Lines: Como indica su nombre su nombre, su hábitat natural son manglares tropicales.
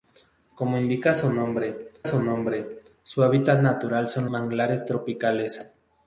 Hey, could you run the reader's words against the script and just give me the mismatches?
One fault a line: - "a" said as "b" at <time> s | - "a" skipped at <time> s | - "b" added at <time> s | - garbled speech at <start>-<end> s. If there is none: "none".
none